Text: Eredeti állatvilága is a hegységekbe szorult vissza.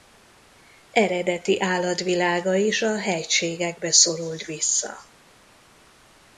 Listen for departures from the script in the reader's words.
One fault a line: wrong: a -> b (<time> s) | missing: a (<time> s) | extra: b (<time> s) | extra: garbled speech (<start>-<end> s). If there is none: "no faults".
no faults